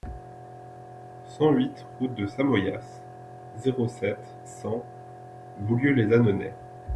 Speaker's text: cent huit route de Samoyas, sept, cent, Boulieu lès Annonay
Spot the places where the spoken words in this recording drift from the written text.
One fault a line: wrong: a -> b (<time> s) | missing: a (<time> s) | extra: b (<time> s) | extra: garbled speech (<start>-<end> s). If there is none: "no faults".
extra: zéro (3.6 s)